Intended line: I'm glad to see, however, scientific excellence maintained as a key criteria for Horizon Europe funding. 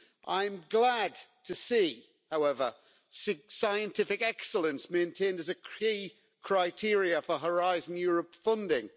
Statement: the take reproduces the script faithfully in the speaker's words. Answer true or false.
true